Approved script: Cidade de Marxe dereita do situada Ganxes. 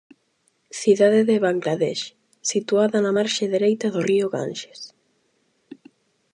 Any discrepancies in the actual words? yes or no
yes